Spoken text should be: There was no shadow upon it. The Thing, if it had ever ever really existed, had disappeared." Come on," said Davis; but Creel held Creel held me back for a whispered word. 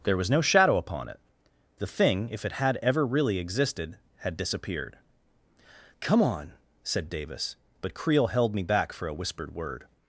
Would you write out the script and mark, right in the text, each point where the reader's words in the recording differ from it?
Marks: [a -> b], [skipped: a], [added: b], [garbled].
There was no shadow upon it. The Thing, if it had ever [skipped: ever] really existed, had disappeared." Come on," said Davis; but Creel held [skipped: Creel held] me back for a whispered word.